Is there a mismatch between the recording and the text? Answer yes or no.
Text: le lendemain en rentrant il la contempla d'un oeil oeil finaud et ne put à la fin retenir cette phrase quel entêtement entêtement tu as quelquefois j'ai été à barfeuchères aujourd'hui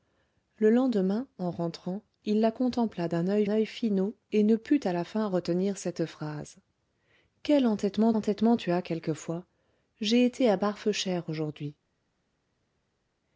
no